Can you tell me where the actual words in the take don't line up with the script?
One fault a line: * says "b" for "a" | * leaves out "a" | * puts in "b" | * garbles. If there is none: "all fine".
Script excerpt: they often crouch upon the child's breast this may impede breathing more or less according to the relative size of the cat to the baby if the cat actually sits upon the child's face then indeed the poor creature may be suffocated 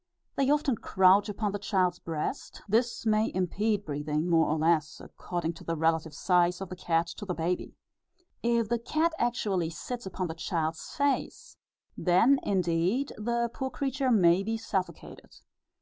all fine